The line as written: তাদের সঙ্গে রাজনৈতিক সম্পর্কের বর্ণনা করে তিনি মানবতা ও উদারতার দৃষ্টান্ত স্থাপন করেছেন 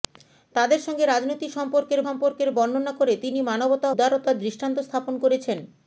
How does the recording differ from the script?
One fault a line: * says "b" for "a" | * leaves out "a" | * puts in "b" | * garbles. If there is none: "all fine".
* puts in "সম্পর্কের"
* leaves out "ও"